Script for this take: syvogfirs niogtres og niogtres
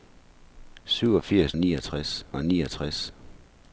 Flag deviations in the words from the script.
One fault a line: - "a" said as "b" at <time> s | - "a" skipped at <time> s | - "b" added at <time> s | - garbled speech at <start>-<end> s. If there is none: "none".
none